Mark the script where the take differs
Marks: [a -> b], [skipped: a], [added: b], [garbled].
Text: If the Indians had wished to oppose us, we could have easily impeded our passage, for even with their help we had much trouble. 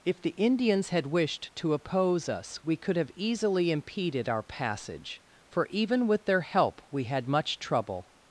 If the Indians had wished to oppose us, we could have easily impeded our passage, for even with their help we had much trouble.